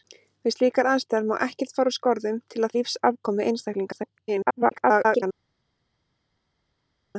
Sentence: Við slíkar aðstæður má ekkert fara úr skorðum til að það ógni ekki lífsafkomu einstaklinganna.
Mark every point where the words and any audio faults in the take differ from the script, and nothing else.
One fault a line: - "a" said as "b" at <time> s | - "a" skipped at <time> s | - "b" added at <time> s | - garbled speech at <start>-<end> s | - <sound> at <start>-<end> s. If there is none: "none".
- "það ógni ekki" skipped at 2.8 s
- garbled speech at 3.9-5.2 s